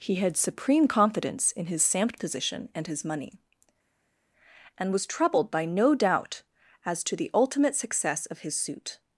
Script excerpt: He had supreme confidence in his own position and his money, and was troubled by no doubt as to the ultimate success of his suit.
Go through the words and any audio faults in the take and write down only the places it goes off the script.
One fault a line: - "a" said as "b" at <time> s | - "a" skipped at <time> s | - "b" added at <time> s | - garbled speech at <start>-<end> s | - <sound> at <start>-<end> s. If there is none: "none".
- "own" said as "samt" at 1.8 s